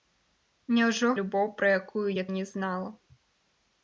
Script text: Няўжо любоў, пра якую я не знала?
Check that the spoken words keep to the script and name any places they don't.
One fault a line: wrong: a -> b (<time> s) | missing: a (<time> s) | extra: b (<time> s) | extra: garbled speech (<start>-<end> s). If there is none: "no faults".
no faults